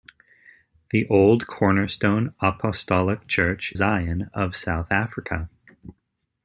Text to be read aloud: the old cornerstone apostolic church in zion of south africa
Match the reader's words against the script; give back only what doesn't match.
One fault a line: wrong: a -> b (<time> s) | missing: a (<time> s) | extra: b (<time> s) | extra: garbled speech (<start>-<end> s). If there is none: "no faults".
missing: in (3.7 s)